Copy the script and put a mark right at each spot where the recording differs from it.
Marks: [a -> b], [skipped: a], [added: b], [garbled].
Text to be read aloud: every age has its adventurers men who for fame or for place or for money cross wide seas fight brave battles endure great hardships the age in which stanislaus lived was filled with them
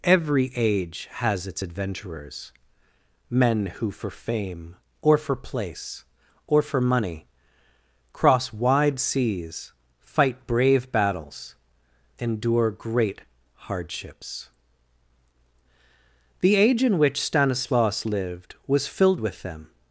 every age has its adventurers men who for fame or for place or for money cross wide seas fight brave battles endure great hardships the age in which stanislaus lived was filled with them